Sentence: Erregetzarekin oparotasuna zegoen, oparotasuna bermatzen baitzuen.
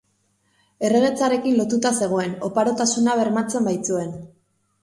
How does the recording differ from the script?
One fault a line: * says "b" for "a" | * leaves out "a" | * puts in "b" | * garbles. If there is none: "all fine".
* says "lotuta" for "oparotasuna"